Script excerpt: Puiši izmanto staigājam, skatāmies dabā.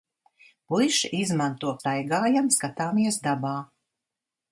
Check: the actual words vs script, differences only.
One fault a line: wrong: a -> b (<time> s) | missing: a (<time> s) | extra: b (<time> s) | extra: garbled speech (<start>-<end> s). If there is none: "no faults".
no faults